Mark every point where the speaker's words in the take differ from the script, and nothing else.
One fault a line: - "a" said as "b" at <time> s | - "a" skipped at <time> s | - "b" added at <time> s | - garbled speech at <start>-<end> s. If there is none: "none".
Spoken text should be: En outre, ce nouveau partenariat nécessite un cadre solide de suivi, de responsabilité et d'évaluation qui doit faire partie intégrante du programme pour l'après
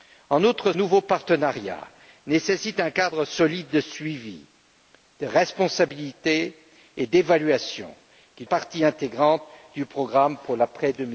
- "ce" skipped at 0.7 s
- "doit faire" skipped at 8.4 s